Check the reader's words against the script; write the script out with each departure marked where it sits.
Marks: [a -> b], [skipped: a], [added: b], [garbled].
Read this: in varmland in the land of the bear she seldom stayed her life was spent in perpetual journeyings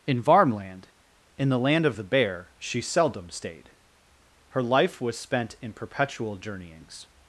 in varmland in the land of the bear she seldom stayed her life was spent in perpetual journeyings